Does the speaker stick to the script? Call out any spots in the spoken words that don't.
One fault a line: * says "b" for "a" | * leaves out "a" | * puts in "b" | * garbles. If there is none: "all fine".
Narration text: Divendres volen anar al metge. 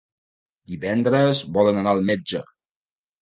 all fine